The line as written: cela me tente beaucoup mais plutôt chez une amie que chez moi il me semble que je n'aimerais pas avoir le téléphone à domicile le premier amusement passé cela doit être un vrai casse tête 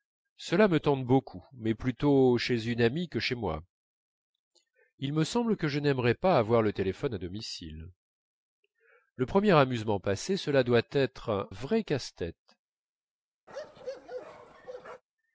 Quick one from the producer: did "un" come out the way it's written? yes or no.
no